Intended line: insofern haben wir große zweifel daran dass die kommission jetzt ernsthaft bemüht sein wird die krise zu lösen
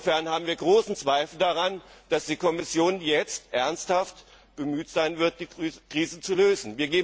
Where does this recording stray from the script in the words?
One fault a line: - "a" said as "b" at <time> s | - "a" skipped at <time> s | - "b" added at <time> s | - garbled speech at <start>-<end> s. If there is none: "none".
none